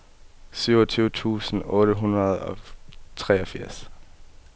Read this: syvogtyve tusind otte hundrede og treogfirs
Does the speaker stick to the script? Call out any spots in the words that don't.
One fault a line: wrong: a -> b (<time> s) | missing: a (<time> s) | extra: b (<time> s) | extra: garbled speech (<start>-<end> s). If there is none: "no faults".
no faults